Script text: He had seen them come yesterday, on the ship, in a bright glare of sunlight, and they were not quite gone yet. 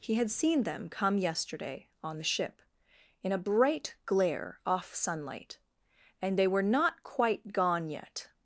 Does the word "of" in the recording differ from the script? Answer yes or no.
yes